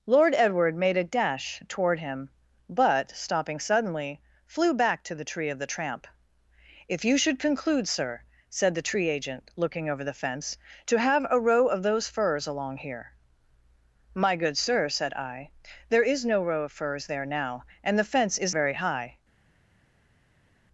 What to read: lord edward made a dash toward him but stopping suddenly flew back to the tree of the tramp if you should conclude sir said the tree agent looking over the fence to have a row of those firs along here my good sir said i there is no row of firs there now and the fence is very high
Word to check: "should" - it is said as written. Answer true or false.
true